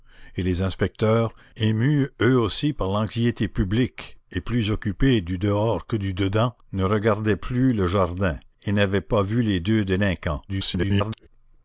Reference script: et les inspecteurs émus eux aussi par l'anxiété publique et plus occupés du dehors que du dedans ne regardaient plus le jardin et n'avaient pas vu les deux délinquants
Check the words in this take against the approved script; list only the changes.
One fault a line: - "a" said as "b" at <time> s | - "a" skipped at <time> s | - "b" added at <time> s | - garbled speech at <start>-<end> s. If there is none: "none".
- garbled speech at 10.5-11.3 s